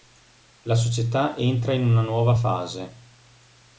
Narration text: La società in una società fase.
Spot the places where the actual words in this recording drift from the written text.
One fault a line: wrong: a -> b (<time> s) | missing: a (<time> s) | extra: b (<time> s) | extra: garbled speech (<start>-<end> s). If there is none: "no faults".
extra: entra (1.4 s)
wrong: società -> nuova (2.0 s)